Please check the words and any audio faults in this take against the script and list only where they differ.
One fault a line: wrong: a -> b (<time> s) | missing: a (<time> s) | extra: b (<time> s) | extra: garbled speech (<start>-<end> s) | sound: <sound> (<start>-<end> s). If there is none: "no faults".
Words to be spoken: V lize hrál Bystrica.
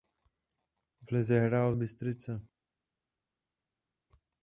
no faults